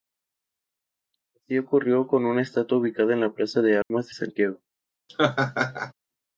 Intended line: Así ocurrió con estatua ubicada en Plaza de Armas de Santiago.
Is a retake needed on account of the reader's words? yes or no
yes